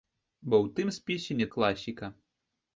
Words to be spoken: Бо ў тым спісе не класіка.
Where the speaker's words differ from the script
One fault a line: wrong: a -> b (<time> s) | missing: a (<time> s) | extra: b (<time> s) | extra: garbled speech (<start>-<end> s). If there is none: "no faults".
no faults